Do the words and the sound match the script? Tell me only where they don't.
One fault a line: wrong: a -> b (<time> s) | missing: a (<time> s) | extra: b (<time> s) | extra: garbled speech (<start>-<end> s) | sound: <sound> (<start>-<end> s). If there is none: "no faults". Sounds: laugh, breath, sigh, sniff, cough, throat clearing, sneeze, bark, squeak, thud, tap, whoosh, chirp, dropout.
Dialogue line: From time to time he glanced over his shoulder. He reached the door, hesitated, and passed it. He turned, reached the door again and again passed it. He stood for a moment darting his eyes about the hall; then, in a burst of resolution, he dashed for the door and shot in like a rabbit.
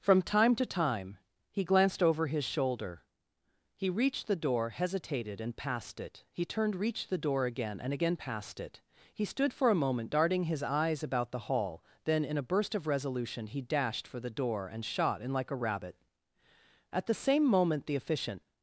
extra: At the same moment the Efficient (16.9 s)